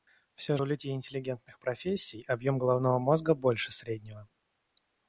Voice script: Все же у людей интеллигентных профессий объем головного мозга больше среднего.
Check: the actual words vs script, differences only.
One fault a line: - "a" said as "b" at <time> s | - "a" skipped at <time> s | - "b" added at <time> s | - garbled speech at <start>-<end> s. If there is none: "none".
- "же" skipped at 0.6 s